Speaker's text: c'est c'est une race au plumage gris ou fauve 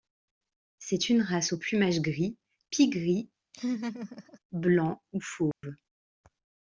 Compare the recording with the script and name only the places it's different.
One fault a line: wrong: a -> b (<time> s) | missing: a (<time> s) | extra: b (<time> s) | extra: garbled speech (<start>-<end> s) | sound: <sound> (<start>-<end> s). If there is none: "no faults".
missing: c'est (1.1 s)
extra: pie gris blanc (2.7 s)
sound: laugh (3.5-4.4 s)
sound: dropout (5.5-5.6 s)